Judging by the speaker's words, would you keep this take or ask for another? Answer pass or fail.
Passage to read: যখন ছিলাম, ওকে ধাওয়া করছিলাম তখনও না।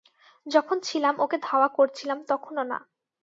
pass